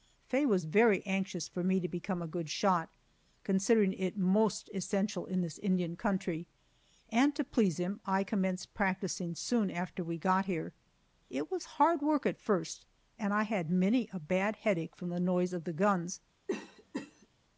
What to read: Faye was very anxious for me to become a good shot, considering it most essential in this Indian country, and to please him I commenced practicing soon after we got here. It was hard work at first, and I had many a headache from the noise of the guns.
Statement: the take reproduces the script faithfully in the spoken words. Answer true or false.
false